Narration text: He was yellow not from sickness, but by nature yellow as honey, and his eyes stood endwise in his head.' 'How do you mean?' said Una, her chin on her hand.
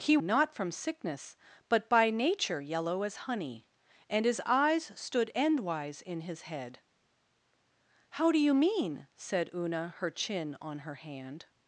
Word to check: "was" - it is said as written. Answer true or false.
false